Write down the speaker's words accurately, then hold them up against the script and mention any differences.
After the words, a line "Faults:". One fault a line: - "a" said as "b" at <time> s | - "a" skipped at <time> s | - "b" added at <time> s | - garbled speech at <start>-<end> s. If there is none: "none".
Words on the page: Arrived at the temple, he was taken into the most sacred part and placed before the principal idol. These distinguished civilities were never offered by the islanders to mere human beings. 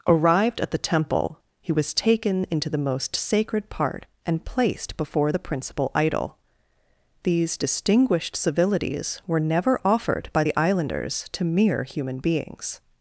Arrived at the temple, he was taken into the most sacred part and placed before the principal idol. These distinguished civilities were never offered by the islanders to mere human beings.
Faults:
none